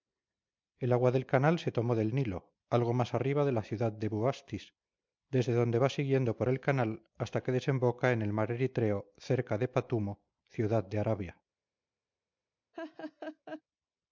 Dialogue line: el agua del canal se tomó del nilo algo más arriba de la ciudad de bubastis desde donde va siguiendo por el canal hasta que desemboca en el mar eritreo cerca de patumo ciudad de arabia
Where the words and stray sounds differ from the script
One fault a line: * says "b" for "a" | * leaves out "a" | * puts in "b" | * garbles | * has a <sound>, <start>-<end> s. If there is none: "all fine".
* has a laugh, 12.7-13.6 s